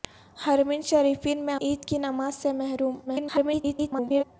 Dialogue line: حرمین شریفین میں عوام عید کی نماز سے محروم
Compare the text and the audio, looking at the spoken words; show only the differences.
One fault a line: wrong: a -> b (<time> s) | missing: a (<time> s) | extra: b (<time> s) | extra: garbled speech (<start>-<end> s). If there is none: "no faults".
missing: عوام (1.6 s)
extra: garbled speech (3.1-4.2 s)